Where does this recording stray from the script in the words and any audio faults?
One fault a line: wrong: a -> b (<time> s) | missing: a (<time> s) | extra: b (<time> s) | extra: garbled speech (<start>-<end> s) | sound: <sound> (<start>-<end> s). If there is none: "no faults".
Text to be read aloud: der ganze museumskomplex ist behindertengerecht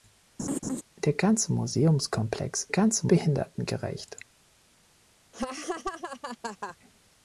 sound: laugh (0.4-0.8 s)
wrong: ist -> ganze (2.7 s)
sound: laugh (5.3-6.8 s)